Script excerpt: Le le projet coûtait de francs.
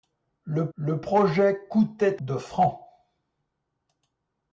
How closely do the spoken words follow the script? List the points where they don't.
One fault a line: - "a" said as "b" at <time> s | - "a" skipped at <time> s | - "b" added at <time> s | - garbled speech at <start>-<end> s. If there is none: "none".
none